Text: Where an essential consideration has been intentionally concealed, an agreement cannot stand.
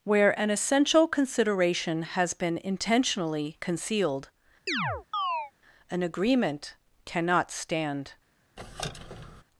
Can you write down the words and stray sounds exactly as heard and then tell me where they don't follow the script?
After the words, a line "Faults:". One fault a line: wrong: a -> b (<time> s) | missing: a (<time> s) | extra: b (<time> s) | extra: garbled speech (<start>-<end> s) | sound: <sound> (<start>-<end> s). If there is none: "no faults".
Where an essential consideration has been intentionally concealed, an agreement cannot stand.
Faults:
sound: chirp (4.7-5.5 s)
sound: squeak (8.6-9.4 s)